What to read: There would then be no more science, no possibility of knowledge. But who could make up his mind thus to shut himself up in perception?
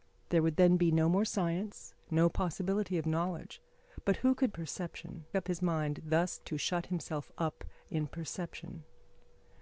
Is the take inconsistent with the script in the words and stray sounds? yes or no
yes